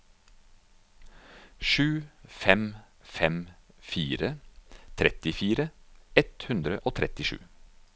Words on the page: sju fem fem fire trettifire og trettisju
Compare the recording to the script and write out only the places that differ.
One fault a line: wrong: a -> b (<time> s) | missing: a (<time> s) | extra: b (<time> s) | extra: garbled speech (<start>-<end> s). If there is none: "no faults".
extra: ett hundre (6.2 s)